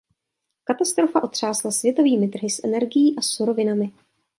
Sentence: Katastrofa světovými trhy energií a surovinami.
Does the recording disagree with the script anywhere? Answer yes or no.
yes